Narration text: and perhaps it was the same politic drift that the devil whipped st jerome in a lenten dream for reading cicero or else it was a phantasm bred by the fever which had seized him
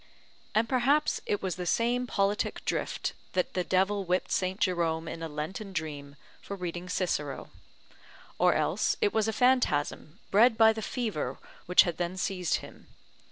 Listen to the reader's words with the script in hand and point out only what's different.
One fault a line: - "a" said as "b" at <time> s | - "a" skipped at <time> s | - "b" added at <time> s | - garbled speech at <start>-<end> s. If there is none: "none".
- "then" added at 12.0 s